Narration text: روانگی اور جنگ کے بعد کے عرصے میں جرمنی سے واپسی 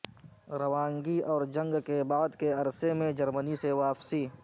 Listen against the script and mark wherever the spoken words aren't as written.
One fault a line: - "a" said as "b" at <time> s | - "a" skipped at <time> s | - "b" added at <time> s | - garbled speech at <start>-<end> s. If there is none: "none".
none